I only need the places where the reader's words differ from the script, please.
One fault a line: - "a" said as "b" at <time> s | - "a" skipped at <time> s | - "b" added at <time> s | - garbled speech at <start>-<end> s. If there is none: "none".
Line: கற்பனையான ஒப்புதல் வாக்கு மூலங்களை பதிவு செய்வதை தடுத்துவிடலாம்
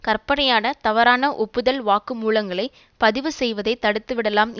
- "தவறான" added at 0.8 s